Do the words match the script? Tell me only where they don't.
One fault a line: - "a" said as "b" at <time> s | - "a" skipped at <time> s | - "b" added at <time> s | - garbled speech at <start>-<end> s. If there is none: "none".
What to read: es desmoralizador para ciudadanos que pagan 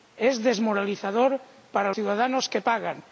none